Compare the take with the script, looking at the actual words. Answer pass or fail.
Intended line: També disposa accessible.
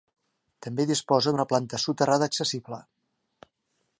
fail